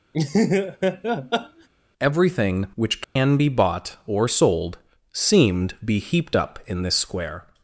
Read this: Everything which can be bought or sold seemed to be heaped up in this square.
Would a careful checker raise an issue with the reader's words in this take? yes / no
yes